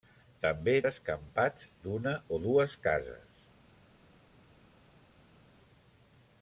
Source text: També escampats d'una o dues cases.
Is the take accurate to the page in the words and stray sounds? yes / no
yes